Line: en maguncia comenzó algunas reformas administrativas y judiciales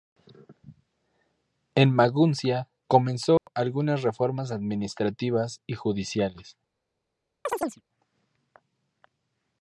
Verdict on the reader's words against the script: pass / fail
pass